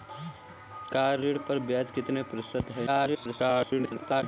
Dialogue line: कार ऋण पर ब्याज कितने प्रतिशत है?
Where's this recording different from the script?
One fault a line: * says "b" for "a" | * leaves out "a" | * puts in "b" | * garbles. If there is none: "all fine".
* garbles